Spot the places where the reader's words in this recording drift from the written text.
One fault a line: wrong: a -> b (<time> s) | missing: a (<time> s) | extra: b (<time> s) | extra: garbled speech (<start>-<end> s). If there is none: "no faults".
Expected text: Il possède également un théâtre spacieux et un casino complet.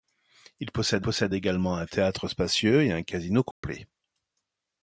extra: possède (1.0 s)